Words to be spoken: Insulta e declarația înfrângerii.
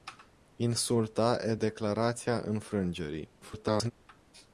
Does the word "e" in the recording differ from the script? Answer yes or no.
no